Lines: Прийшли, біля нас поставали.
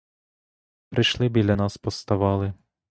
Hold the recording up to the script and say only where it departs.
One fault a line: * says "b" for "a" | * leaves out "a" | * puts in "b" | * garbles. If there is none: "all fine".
all fine